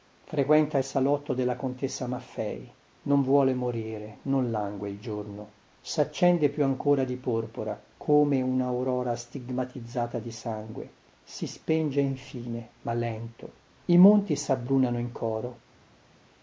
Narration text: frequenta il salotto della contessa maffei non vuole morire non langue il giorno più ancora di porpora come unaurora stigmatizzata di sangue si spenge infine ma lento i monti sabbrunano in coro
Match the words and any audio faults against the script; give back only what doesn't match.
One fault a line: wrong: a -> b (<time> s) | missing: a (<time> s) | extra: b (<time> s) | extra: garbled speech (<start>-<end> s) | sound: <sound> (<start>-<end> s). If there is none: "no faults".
extra: saccende (5.8 s)